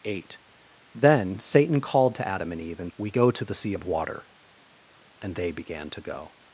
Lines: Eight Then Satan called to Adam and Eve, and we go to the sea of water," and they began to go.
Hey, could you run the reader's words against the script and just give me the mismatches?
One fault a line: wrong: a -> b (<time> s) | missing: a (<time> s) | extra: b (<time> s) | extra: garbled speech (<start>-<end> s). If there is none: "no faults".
no faults